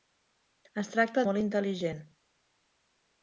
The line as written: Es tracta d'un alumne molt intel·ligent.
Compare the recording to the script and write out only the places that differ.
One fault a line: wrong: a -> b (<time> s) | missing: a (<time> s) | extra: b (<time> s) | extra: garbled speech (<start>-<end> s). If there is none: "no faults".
missing: d'un alumne (1.2 s)